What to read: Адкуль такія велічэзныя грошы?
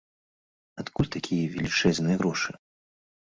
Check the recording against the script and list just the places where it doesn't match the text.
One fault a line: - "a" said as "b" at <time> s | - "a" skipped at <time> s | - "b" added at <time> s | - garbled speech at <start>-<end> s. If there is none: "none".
none